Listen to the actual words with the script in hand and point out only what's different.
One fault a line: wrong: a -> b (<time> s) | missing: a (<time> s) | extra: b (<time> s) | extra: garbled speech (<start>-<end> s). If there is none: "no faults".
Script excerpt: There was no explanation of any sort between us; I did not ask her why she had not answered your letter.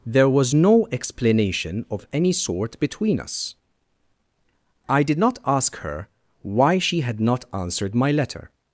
wrong: your -> my (7.9 s)